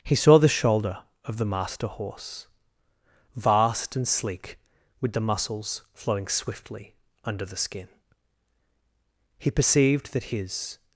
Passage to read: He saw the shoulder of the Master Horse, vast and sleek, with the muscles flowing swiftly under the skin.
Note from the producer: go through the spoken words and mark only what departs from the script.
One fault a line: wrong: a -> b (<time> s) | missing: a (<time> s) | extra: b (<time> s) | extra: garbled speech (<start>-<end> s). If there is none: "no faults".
extra: He perceived that his (9.4 s)